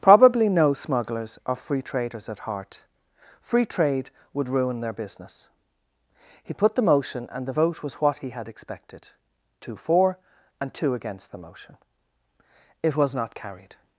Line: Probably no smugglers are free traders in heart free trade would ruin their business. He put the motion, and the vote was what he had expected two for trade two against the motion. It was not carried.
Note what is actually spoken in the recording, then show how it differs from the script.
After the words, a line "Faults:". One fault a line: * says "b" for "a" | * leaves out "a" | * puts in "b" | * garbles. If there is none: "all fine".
Probably no smugglers are free traders at heart free trade would ruin their business. He put the motion, and the vote was what he had expected two for and two against the motion. It was not carried.
Faults:
* says "at" for "in"
* says "and" for "trade"